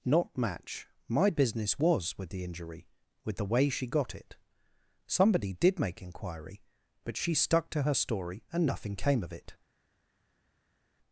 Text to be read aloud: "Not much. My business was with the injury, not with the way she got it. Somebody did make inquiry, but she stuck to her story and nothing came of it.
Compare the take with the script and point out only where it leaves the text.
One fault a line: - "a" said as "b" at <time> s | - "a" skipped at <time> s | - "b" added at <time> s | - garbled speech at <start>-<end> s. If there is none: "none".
- "much" said as "match" at 0.4 s
- "not" skipped at 2.9 s